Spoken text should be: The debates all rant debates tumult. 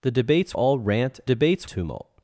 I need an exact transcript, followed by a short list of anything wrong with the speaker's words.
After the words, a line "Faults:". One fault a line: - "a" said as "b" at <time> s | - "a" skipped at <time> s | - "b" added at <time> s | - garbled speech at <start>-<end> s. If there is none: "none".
The debates all rant debates tumult.
Faults:
none